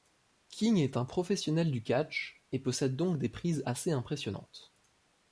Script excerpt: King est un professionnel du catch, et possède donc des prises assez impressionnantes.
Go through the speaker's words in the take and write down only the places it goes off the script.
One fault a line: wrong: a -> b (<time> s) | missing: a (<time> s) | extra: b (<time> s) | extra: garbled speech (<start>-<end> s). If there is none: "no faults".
no faults